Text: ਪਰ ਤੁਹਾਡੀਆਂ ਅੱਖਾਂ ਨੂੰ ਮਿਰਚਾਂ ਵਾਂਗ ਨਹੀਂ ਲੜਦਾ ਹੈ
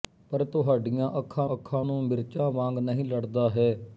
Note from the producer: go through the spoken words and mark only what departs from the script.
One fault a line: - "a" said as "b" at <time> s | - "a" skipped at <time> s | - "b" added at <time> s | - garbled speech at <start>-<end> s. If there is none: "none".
- "ਅੱਖਾਂ" added at 1.5 s